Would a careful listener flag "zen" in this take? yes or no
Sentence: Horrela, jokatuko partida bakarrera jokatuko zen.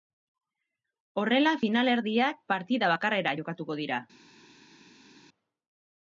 yes